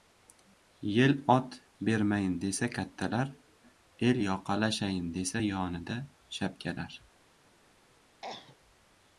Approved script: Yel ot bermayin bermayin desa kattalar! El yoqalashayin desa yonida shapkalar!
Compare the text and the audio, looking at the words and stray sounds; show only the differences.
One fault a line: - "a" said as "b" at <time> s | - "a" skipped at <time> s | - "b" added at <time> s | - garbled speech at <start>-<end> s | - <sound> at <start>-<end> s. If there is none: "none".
- "bermayin" skipped at 2.4 s
- cough at 8.2-8.6 s